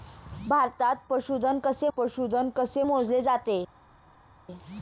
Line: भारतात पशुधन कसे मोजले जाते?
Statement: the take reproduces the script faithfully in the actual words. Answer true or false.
false